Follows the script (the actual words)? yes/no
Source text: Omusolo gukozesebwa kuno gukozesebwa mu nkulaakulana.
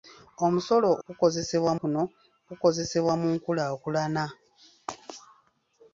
yes